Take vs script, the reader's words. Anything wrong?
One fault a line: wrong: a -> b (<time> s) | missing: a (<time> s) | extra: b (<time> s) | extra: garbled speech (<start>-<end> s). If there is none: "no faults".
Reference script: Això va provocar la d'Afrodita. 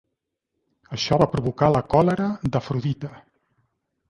extra: còlera (2.0 s)